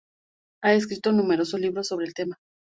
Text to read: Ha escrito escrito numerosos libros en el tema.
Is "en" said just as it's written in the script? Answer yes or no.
no